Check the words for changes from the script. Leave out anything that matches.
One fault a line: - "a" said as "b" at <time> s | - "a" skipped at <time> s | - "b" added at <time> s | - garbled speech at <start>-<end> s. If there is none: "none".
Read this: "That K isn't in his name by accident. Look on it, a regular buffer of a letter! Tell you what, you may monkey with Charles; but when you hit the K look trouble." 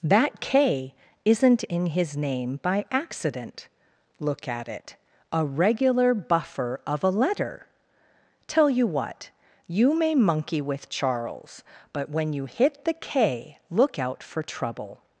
- "on" said as "at" at 4.5 s
- "out for" added at 14.0 s